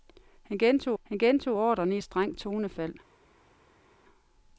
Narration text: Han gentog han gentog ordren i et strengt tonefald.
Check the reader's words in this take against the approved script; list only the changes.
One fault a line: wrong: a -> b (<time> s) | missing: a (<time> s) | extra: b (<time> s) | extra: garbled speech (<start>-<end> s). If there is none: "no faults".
no faults